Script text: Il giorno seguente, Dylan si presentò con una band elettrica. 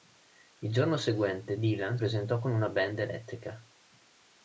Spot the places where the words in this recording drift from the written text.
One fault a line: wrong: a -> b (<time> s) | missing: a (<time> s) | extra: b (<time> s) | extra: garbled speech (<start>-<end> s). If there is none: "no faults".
missing: si (2.0 s)